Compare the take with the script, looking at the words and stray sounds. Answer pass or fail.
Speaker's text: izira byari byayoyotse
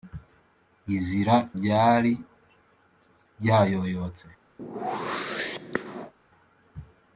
fail